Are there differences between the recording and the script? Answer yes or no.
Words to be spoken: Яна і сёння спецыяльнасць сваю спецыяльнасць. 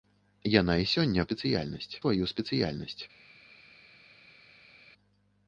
no